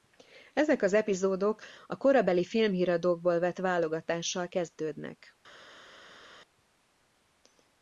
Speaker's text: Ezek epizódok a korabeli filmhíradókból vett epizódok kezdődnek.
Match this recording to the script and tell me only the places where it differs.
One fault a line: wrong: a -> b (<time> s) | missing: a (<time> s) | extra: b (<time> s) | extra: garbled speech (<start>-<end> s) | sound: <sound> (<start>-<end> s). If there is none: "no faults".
extra: az (0.8 s)
wrong: epizódok -> válogatással (3.6 s)